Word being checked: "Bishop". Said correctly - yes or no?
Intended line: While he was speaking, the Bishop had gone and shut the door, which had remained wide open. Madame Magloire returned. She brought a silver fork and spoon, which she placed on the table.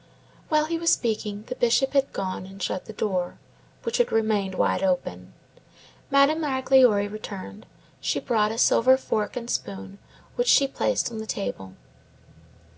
yes